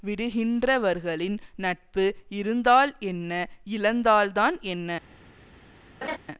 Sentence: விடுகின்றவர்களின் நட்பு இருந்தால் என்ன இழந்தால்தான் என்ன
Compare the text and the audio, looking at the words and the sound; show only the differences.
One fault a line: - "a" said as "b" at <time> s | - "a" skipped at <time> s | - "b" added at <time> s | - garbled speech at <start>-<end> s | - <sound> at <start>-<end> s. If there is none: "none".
- laugh at 6.0-6.2 s